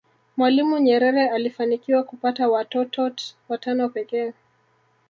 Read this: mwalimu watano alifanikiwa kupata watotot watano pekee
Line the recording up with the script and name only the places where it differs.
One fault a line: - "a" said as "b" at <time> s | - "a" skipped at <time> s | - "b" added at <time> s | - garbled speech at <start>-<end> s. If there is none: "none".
- "watano" said as "nyerere" at 0.8 s